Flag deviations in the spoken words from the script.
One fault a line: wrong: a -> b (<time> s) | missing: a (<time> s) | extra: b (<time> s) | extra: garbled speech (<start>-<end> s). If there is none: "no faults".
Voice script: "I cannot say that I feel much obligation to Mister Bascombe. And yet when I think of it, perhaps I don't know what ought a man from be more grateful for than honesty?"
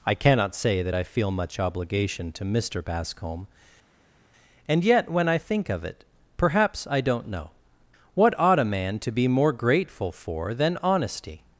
wrong: from -> to (9.0 s)